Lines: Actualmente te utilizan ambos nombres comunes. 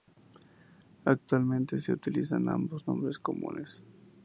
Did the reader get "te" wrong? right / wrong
wrong